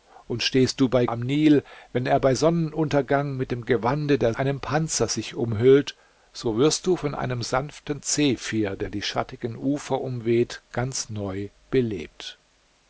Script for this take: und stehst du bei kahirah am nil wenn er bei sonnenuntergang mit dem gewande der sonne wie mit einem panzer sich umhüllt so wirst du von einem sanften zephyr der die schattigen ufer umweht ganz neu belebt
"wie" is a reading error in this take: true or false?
true